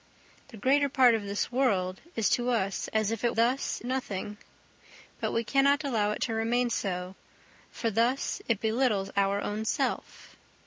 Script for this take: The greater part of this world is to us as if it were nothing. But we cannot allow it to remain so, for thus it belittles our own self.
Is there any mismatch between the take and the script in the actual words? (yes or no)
yes